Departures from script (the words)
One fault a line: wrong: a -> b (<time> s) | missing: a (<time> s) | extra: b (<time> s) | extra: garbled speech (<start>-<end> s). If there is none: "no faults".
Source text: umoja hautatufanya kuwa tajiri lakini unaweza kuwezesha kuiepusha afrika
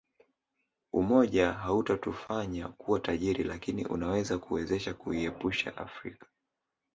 no faults